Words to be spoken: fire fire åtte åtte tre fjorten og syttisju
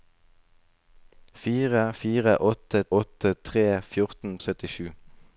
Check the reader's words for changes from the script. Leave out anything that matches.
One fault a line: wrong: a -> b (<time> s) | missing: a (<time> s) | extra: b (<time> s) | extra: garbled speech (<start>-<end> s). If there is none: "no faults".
no faults